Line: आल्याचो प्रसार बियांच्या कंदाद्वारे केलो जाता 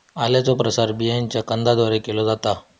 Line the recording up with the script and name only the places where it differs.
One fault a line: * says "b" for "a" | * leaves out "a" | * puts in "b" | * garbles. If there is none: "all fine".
all fine